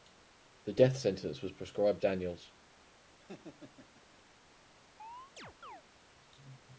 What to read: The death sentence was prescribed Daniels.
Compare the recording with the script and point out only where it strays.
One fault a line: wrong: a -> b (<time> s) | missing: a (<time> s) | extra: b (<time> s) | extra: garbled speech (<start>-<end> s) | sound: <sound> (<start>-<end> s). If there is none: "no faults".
sound: laugh (3.2-4.2 s)
sound: chirp (5.0-5.8 s)